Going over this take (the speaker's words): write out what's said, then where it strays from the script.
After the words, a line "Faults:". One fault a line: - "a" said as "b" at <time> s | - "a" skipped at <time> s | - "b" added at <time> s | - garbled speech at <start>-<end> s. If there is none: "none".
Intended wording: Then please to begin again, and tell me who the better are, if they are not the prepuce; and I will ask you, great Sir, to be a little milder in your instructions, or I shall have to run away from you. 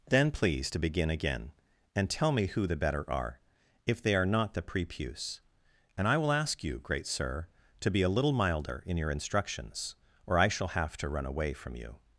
Then please to begin again, and tell me who the better are, if they are not the prepuce; and I will ask you, great Sir, to be a little milder in your instructions, or I shall have to run away from you.
Faults:
none